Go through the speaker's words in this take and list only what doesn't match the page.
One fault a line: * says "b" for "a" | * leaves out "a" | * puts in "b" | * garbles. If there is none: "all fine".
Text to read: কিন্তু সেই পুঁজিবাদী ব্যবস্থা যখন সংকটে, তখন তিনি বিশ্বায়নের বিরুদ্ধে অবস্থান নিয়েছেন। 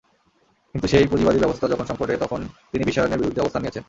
all fine